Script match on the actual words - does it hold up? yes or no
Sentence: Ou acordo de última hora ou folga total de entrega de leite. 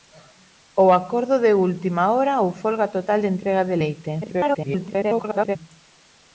no